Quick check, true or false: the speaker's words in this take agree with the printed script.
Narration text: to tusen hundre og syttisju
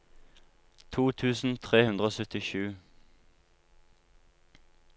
false